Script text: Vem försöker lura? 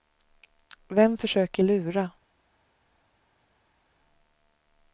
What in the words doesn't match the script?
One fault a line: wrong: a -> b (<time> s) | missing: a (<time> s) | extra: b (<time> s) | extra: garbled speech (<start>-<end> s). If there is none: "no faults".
no faults